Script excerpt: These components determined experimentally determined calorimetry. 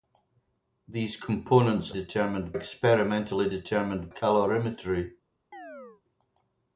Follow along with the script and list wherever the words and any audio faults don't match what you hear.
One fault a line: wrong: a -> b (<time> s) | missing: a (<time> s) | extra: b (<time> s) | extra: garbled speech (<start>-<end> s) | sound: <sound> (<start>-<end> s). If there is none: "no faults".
sound: chirp (5.5-6.0 s)